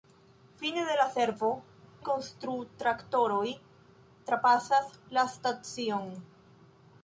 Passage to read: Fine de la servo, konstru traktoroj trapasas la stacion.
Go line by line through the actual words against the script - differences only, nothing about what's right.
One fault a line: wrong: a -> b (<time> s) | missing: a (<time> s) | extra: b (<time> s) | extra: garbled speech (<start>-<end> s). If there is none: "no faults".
no faults